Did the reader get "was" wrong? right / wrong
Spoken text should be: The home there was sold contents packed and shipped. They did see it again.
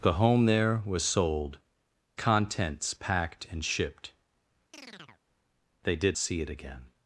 right